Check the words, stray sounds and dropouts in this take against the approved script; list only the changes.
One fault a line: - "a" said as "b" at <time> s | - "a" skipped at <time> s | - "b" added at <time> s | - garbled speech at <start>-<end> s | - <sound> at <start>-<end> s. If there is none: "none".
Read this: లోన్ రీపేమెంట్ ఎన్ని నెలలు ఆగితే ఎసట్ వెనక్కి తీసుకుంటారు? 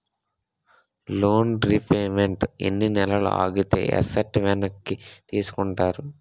none